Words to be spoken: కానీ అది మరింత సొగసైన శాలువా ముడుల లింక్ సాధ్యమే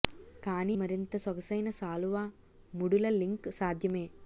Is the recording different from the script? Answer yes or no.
yes